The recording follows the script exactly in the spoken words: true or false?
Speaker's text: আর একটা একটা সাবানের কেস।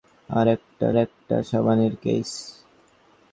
true